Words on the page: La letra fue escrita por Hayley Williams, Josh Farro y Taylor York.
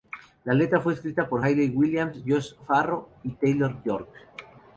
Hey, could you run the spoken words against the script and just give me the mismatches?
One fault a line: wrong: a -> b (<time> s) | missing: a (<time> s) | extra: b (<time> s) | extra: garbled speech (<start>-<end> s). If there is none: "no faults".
no faults